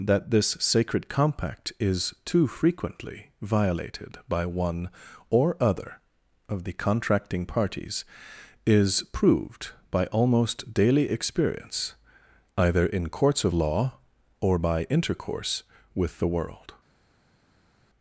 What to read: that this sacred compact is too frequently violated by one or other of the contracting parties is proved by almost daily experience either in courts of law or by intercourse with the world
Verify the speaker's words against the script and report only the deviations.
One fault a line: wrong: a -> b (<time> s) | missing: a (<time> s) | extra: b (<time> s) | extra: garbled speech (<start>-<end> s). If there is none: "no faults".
no faults